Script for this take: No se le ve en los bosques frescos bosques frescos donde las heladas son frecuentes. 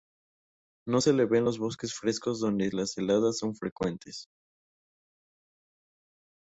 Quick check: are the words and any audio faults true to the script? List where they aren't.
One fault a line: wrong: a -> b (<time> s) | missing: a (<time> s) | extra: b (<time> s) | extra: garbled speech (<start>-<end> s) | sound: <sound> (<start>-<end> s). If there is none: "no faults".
missing: bosques frescos (2.4 s)